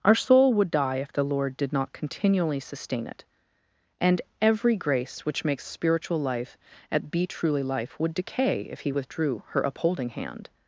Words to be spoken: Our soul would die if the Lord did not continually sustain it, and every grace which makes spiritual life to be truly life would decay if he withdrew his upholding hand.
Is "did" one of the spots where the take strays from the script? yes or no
no